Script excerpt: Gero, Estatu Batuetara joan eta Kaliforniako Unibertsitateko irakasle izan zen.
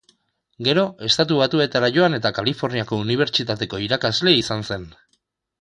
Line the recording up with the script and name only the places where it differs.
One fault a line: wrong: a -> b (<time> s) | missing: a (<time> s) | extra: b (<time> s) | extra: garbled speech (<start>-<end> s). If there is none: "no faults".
no faults